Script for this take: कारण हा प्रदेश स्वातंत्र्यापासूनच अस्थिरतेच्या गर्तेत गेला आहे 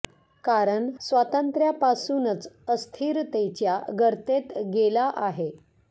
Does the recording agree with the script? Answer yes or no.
no